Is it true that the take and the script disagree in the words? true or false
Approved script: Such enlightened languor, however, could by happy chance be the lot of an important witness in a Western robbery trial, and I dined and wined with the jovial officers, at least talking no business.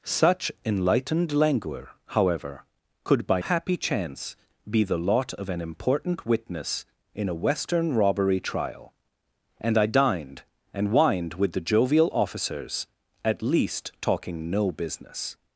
false